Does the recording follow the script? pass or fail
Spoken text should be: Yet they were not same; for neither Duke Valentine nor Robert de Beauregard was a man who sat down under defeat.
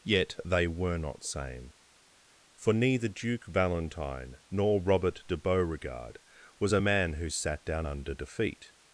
pass